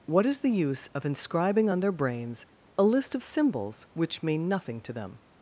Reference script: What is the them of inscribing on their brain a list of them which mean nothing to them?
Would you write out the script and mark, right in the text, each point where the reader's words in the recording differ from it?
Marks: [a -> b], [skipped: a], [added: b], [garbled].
What is the [them -> use] of inscribing on their [brain -> brains] a list of [them -> symbols] which mean nothing to them?